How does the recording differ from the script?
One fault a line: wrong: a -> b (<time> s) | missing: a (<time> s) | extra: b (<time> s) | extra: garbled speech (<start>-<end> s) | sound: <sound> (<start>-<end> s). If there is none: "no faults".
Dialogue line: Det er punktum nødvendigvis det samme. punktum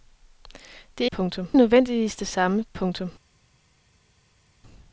no faults